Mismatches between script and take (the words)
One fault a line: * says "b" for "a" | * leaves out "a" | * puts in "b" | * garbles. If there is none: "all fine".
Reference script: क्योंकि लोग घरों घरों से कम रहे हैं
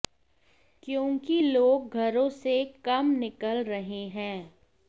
* leaves out "घरों"
* puts in "निकल"